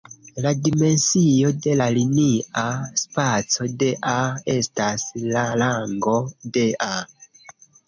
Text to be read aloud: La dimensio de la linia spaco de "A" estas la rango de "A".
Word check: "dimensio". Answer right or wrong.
right